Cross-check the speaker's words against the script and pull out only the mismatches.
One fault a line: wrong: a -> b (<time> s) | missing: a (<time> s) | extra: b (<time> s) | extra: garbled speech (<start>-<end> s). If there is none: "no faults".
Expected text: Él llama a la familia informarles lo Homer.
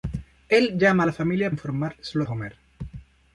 no faults